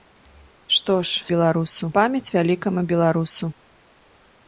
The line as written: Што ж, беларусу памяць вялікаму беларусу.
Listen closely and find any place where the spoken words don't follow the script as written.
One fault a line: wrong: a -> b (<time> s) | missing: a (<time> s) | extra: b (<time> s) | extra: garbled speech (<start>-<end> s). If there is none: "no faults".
no faults